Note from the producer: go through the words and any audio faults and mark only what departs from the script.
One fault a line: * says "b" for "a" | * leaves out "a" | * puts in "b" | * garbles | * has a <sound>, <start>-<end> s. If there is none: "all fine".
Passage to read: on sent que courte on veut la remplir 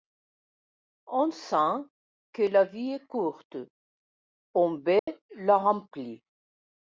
* puts in "la vie est"
* has a dropout, 5.0-5.1 s